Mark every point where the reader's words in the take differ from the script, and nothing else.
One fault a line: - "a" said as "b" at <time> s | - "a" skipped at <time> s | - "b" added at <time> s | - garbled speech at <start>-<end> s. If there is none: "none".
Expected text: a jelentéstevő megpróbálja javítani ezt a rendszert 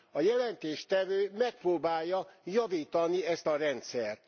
none